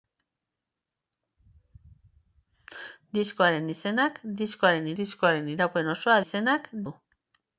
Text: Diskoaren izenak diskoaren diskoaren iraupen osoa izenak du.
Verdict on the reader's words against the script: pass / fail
pass